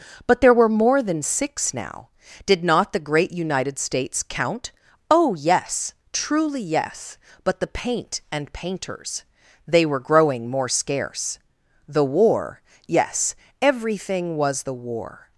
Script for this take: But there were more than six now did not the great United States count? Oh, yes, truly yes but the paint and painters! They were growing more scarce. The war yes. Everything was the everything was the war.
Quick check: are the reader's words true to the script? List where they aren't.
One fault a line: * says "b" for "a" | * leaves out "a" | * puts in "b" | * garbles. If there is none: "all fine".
* leaves out "everything was the"